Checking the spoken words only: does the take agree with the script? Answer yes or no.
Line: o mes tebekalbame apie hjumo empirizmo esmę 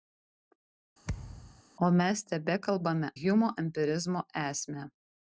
no